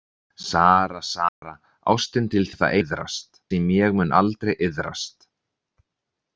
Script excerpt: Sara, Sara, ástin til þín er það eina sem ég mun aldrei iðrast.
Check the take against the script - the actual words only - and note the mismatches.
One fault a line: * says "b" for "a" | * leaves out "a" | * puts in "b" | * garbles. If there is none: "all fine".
* leaves out "þín"
* says "iðrast" for "eina"